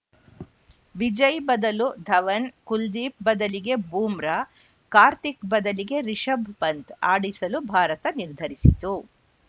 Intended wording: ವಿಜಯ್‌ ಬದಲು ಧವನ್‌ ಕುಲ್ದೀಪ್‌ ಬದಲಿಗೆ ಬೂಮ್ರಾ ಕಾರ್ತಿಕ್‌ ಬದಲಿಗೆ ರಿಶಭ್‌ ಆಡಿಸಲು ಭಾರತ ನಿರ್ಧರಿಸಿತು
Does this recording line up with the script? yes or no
no